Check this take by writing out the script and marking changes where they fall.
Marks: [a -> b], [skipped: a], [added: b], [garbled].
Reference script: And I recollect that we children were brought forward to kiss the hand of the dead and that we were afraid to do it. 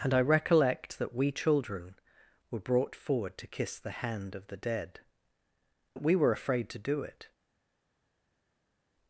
And I recollect that we children were brought forward to kiss the hand of the dead [skipped: and] that we were afraid to do it.